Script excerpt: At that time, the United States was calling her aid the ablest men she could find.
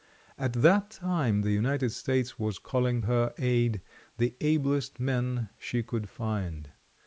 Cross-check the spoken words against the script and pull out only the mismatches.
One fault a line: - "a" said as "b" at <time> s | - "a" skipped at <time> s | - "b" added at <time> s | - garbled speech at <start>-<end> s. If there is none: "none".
none